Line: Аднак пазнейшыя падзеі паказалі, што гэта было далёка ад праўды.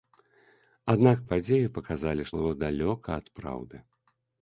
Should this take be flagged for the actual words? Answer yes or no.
yes